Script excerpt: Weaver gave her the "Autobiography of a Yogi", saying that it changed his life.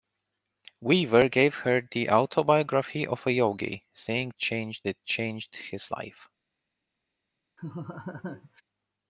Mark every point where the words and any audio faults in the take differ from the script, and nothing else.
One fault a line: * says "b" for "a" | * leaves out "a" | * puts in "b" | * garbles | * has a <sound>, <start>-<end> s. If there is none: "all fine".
* says "changed" for "that"
* has a laugh, 7.6-8.6 s